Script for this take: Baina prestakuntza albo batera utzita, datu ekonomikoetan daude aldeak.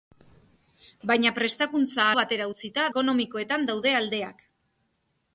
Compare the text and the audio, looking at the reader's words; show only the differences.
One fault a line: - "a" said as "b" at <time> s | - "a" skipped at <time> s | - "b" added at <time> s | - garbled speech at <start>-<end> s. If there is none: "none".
- "albo" skipped at 2.1 s
- "datu" skipped at 2.9 s